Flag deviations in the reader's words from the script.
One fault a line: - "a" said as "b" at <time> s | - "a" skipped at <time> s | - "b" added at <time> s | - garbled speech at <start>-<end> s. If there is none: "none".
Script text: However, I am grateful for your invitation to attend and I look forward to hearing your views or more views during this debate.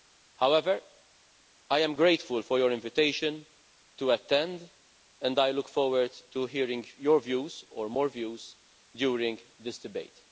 none